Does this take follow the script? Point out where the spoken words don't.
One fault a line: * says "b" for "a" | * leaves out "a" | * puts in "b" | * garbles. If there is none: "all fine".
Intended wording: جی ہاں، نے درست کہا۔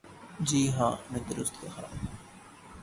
all fine